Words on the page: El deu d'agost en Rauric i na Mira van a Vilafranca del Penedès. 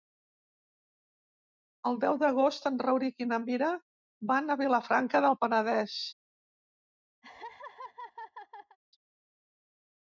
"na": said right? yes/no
yes